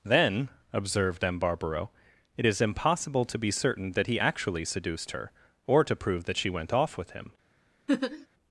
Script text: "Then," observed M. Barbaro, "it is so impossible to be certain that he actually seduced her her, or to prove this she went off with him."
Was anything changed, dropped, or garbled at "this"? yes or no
yes